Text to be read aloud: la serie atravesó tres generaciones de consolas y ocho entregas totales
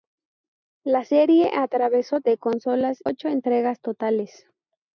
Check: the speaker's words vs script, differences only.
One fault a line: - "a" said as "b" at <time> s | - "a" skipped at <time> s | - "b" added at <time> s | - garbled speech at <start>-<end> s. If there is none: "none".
- "tres generaciones" skipped at 2.2 s
- "y" skipped at 3.0 s